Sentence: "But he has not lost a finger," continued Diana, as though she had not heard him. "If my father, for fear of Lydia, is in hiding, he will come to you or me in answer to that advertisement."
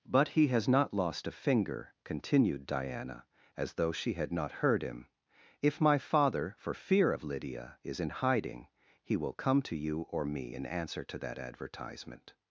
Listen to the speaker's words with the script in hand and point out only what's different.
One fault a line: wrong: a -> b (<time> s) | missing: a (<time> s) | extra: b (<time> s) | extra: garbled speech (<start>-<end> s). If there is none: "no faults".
no faults